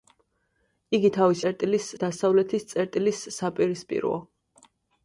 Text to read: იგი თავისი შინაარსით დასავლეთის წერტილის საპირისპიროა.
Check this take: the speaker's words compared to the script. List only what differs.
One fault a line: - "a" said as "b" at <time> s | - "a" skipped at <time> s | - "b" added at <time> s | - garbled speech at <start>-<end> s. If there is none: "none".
- "შინაარსით" said as "წერტილის" at 1.4 s